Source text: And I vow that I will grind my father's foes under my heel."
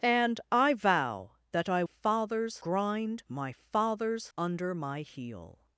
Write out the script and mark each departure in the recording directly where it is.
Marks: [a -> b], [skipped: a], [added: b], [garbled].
And I vow that I [will -> father's] grind my father's [skipped: foes] under my heel."